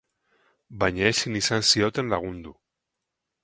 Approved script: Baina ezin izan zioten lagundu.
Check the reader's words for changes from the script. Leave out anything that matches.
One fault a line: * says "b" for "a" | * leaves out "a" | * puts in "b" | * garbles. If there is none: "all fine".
all fine